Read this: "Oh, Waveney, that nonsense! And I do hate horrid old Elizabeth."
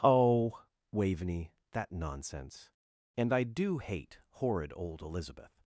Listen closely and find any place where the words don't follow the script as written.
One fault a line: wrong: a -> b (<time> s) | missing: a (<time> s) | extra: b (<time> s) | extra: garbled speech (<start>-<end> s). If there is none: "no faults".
no faults